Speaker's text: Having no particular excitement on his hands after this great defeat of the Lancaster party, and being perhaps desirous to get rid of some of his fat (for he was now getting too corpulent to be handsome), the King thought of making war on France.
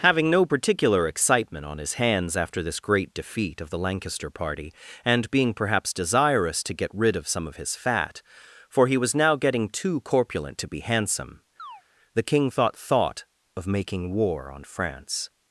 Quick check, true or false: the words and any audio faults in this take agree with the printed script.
false